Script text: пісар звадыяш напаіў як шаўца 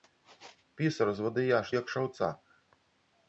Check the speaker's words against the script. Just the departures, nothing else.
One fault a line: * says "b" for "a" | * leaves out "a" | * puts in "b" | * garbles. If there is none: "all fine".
* leaves out "напаіў"